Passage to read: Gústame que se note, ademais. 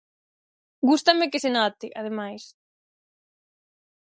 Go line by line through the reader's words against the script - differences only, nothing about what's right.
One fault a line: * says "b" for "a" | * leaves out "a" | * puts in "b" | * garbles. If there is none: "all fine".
all fine